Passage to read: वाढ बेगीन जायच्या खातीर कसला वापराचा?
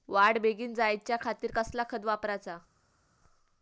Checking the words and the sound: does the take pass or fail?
fail